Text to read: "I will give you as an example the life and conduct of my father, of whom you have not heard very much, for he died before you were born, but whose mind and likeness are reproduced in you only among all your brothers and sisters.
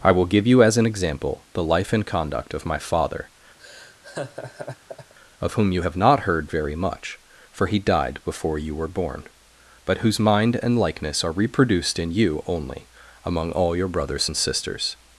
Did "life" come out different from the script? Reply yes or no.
no